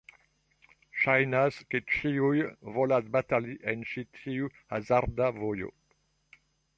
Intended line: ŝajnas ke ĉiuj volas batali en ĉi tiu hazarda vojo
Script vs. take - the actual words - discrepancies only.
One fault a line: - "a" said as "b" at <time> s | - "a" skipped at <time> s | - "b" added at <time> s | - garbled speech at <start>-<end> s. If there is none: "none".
none